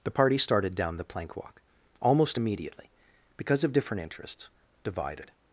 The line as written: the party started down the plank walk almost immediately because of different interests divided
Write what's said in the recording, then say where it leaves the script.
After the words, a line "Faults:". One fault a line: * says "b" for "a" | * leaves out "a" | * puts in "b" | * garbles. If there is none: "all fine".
the party started down the plank walk almost immediately because of different interests divided
Faults:
all fine